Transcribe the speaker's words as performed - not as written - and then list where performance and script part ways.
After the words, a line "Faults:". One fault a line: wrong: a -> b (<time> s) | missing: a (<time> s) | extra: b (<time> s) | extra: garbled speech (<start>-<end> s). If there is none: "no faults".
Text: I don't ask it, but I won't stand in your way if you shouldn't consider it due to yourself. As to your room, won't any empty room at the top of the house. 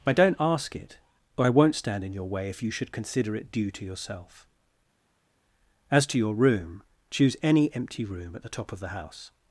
I don't ask it, but I won't stand in your way if you should consider it due to yourself. As to your room, choose any empty room at the top of the house.
Faults:
wrong: shouldn't -> should (2.7 s)
wrong: won't -> choose (7.1 s)